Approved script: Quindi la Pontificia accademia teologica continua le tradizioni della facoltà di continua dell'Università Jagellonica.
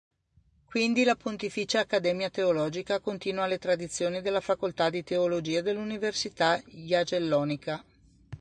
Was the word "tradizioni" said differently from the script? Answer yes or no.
no